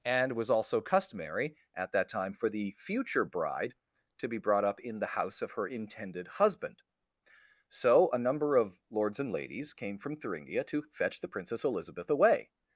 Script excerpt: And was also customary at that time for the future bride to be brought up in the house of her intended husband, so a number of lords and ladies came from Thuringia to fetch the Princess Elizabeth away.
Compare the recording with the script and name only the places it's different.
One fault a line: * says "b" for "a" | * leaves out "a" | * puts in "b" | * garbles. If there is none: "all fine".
all fine